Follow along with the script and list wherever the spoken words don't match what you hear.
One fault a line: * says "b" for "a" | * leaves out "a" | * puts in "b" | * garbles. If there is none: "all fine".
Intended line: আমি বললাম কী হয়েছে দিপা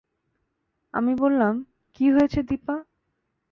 all fine